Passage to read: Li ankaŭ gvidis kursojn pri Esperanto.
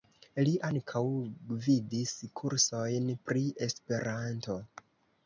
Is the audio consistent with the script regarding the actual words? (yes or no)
yes